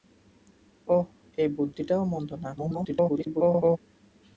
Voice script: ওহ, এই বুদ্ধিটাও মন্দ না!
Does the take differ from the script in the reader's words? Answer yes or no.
yes